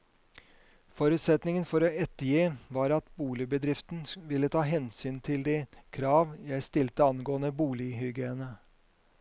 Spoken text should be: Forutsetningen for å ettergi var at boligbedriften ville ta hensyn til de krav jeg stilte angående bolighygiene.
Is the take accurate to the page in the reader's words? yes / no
yes